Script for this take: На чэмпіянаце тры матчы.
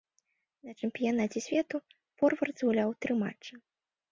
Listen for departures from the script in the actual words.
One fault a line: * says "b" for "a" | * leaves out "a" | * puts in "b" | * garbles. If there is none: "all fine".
* puts in "свету форвард згуляў"